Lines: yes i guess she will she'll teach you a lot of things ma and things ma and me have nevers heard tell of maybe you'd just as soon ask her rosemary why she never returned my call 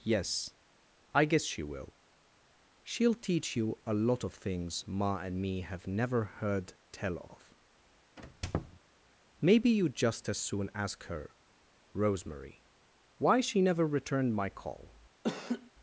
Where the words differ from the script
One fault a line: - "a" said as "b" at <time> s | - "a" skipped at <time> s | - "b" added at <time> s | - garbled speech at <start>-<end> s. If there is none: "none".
- "things ma and" skipped at 5.4 s
- "nevers" said as "never" at 5.9 s